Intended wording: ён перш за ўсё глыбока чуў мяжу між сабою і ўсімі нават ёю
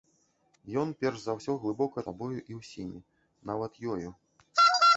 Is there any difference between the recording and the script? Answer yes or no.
yes